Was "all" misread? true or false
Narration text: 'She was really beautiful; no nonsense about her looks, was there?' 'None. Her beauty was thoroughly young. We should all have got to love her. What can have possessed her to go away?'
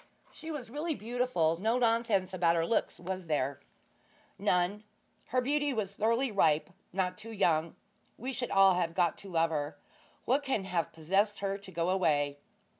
false